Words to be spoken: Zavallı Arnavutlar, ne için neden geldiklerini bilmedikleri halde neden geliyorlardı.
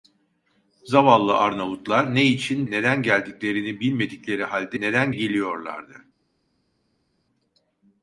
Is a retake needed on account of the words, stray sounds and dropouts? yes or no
no